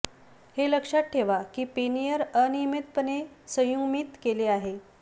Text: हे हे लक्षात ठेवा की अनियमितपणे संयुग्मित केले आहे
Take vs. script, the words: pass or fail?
fail